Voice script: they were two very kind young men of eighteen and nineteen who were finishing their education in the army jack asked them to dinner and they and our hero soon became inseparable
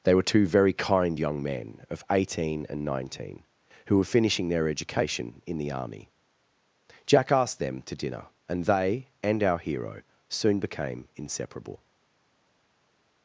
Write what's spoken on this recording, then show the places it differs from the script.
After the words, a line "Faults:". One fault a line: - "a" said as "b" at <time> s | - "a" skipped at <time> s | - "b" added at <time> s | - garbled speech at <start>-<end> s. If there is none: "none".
they were two very kind young men of eighteen and nineteen who were finishing their education in the army jack asked them to dinner and they and our hero soon became inseparable
Faults:
none